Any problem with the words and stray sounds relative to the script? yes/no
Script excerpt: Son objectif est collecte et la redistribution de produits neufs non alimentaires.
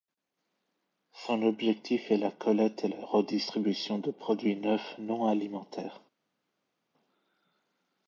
yes